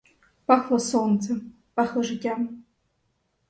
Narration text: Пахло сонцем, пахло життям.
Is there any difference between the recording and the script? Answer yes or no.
no